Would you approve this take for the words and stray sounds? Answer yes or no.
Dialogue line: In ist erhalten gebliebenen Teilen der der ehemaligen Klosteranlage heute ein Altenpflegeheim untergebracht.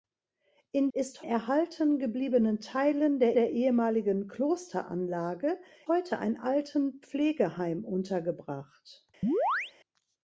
no